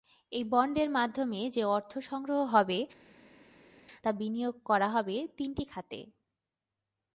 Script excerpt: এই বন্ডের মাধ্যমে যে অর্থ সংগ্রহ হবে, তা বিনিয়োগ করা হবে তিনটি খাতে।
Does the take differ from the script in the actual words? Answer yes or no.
no